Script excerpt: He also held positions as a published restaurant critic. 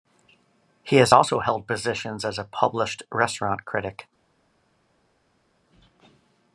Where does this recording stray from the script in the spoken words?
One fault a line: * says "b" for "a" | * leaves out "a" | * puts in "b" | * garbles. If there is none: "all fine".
* puts in "has"